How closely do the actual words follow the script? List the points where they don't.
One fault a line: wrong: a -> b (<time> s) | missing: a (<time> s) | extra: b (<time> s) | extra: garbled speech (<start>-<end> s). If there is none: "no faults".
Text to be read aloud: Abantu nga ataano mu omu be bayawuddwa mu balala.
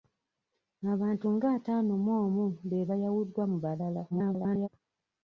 extra: garbled speech (4.1-4.7 s)